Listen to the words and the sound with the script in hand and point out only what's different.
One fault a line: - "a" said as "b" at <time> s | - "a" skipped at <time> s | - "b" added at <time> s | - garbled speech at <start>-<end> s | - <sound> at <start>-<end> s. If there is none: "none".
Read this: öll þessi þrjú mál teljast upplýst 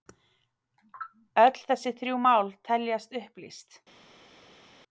none